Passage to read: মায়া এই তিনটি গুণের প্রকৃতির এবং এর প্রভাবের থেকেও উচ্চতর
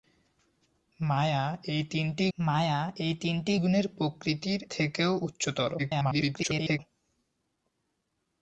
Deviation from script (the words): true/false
true